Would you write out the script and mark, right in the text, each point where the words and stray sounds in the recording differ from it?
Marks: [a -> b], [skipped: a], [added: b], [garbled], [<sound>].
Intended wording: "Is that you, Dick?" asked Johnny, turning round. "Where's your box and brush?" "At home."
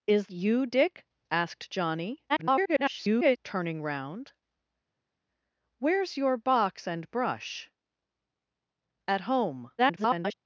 "Is [skipped: that] you, Dick?" asked Johnny, [garbled] turning round. "Where's your box and brush?" "At home." [garbled]